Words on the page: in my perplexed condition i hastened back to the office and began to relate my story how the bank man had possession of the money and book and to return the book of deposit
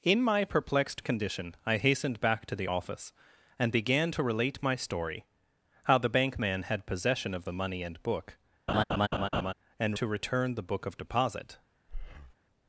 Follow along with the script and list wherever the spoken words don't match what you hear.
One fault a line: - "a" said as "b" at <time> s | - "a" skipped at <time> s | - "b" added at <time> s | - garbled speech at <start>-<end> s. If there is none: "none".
none